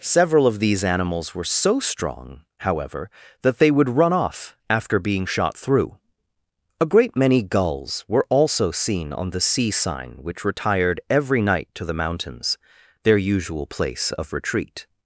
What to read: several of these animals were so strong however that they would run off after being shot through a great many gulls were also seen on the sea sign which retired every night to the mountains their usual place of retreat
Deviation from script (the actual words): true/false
false